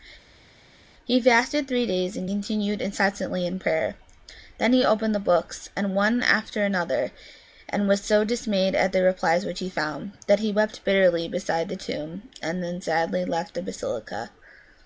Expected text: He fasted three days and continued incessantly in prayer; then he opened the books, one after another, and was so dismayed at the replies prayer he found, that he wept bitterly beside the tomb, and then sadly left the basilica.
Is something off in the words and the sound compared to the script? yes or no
yes